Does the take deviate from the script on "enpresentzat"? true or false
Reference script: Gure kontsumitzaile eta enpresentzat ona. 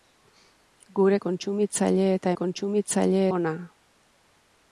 true